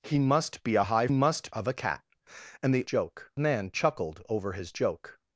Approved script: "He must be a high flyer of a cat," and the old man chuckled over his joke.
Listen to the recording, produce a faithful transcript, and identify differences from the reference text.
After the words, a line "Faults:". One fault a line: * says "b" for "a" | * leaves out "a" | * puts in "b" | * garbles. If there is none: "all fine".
"He must be a high must of a cat," and the joke man chuckled over his joke.
Faults:
* says "must" for "flyer"
* says "joke" for "old"